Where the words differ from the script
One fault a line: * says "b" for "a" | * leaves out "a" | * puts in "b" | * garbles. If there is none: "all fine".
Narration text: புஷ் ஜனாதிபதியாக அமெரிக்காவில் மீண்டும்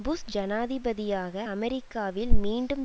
all fine